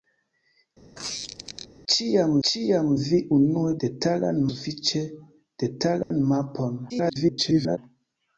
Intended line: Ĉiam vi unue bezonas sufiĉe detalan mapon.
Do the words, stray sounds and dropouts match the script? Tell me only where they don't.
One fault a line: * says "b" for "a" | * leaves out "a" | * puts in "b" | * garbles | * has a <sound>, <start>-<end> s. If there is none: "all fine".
* has a squeak, 1.0-1.7 s
* puts in "ĉiam"
* says "detalan" for "bezonas"
* has a dropout, 6.0-6.1 s
* garbles